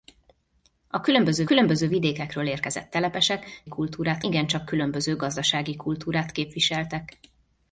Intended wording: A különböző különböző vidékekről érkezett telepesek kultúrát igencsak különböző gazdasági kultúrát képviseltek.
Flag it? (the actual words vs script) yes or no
no